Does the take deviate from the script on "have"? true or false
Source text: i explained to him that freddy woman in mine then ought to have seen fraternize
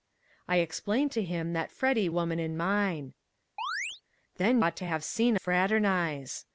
false